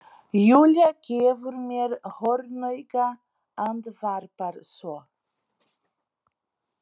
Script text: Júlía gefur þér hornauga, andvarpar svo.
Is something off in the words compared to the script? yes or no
yes